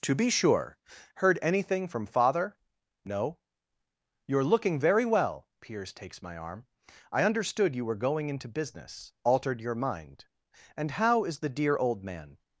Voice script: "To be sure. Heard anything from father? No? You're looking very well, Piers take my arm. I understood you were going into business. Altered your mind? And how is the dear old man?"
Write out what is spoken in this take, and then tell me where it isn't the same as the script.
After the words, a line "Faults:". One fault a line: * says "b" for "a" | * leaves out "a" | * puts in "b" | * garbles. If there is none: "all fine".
"To be sure. Heard anything from father? No? You're looking very well, Piers takes my arm. I understood you were going into business. Altered your mind? And how is the dear old man?"
Faults:
* says "takes" for "take"